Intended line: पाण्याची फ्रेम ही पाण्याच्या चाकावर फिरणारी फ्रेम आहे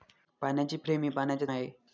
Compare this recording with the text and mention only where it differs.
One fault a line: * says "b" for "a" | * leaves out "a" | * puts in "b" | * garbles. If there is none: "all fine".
* leaves out "चाकावर फिरणारी फ्रेम"